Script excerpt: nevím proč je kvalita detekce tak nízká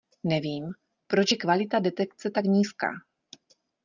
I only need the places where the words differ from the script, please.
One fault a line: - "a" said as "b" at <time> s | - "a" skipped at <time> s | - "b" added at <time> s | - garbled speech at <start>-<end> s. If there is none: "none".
none